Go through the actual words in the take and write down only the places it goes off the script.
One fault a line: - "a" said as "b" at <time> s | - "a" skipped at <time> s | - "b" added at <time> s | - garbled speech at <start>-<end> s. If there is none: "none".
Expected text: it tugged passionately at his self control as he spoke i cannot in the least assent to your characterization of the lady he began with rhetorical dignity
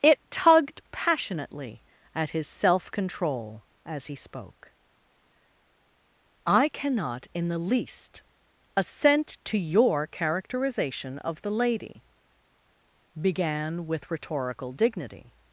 - "he" skipped at 12.0 s